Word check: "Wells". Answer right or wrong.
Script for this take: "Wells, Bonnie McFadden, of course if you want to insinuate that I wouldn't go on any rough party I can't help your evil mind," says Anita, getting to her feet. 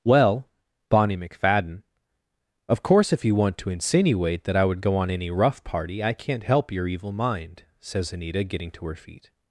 wrong